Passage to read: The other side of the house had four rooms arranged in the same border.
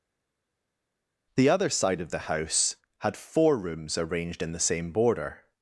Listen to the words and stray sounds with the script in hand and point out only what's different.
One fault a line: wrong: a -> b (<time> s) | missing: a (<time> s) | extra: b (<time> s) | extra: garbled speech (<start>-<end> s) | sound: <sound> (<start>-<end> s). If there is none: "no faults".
no faults